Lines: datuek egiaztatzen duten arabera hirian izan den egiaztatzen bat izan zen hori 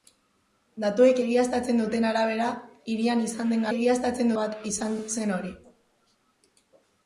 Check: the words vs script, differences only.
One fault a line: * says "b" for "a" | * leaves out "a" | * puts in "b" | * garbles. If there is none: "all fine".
all fine